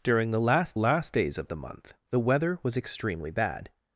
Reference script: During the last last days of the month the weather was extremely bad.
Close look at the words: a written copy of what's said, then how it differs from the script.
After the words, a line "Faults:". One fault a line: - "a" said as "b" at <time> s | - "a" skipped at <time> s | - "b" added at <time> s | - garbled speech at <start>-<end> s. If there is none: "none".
During the last last days of the month the weather was extremely bad.
Faults:
none